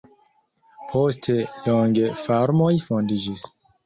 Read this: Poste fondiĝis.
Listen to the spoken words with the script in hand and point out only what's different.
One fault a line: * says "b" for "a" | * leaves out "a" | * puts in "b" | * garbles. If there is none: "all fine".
* puts in "longe farmoj"